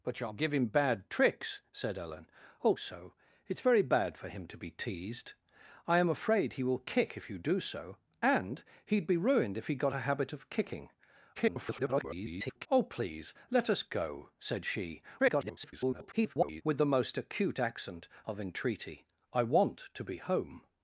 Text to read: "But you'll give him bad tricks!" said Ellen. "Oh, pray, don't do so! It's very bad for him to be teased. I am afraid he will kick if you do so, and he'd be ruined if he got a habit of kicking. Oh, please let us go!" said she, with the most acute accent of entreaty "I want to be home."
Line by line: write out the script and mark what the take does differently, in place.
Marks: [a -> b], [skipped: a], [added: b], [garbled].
"But you'll give him bad tricks!" said Ellen. "Oh, [skipped: pray, don't do] so! It's very bad for him to be teased. I am afraid he will kick if you do so, and he'd be ruined if he got a habit of kicking. [garbled] Oh, please let us go!" said she, [garbled] with the most acute accent of entreaty "I want to be home."